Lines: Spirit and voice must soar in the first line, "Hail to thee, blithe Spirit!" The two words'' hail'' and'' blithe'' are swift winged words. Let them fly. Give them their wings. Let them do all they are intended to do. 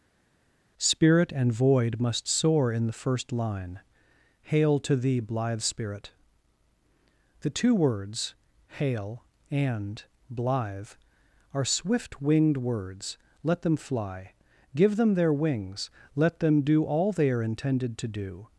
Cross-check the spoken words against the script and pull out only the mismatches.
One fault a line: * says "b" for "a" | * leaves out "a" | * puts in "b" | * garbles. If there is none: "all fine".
* says "void" for "voice"